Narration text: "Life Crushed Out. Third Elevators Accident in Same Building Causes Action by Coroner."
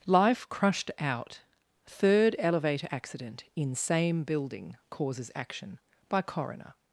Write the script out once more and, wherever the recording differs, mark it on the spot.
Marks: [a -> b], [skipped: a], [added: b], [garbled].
"Life Crushed Out. Third [Elevators -> Elevator] Accident in Same Building Causes Action by Coroner."